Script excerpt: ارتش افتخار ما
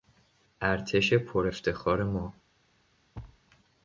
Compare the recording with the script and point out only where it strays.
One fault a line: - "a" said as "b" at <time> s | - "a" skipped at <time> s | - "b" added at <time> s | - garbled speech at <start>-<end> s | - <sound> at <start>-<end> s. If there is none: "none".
- "پر" added at 1.1 s
- thud at 3.1-3.4 s